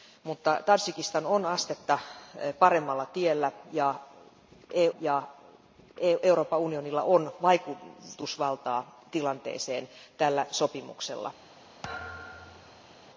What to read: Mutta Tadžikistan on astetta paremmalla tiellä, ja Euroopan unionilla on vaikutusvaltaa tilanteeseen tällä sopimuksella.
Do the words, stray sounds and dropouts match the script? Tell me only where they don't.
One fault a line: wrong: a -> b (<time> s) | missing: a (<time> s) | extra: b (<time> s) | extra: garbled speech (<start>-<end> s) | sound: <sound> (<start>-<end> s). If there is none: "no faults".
extra: ja (5.0 s)
sound: thud (11.8-12.9 s)